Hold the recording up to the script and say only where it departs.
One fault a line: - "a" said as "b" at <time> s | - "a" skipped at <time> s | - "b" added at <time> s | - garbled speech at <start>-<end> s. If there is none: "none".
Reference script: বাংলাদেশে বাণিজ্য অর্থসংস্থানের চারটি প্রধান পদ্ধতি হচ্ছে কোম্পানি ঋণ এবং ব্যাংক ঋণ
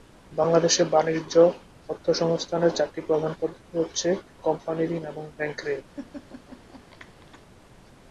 none